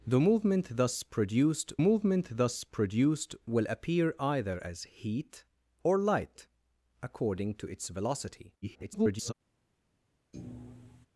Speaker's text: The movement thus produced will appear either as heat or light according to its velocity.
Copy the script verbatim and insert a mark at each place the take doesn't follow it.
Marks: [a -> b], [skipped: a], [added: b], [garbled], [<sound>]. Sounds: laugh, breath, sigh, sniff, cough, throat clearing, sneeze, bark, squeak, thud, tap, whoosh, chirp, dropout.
The movement thus produced [added: movement thus produced] will appear either as heat or light according to its velocity. [garbled] [thud]